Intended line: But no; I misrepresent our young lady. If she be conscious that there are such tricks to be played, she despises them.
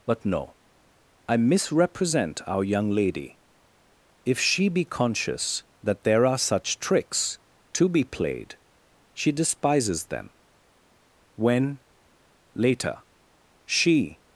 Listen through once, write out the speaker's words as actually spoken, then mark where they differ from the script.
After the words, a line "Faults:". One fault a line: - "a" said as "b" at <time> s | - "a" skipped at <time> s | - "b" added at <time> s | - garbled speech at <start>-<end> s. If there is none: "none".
But no; I misrepresent our young lady. If she be conscious that there are such tricks to be played, she despises them. When, later, she
Faults:
- "When later she" added at 11.3 s